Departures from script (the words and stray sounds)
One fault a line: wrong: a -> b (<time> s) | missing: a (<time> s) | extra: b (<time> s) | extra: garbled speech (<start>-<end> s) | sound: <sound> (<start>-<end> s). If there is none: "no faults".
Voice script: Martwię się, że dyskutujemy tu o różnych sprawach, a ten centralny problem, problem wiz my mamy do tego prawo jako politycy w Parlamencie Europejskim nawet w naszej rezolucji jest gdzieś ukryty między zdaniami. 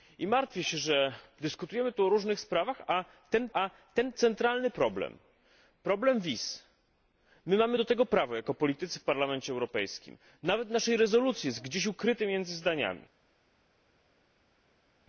extra: a ten (3.5 s)